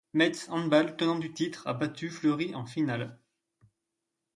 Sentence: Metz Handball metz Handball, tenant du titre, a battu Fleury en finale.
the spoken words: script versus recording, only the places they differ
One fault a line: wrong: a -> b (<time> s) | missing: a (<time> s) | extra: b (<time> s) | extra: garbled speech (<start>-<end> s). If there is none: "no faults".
missing: metz Handball (1.0 s)